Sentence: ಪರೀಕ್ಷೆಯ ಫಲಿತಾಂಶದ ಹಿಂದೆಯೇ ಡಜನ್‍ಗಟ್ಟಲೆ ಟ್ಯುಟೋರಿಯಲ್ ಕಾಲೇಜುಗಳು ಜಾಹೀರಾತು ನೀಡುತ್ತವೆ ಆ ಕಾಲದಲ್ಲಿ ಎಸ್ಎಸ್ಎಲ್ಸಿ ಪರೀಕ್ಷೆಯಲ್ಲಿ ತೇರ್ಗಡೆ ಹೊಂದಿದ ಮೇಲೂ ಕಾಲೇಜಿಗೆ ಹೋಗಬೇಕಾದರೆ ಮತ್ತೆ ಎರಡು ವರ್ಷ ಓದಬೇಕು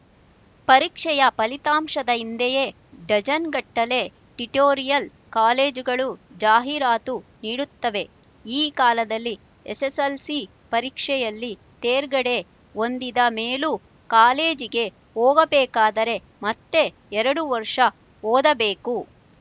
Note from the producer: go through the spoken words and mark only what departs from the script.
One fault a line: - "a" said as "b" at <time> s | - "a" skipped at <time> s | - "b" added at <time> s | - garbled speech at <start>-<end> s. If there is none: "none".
- "ಆ" said as "ಈ" at 8.5 s